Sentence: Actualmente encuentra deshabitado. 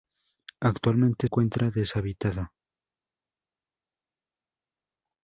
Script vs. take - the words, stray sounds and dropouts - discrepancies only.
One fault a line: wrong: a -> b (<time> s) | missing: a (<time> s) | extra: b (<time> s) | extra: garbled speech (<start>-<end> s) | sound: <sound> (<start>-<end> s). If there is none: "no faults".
no faults